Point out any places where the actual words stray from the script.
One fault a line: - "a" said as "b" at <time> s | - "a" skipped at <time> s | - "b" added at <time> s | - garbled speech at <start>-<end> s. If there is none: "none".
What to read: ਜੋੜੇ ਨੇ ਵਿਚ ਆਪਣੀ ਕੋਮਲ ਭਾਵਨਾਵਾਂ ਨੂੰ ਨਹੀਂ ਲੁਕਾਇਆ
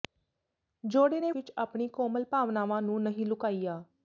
none